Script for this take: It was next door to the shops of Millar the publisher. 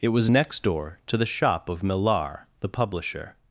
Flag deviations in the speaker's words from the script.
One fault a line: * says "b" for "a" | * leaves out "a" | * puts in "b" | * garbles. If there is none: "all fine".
* says "shop" for "shops"